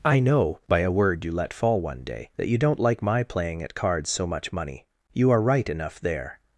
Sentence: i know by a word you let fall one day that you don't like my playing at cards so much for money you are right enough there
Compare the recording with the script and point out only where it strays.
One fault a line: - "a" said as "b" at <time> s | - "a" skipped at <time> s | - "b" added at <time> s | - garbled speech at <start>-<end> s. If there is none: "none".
- "for" skipped at 4.5 s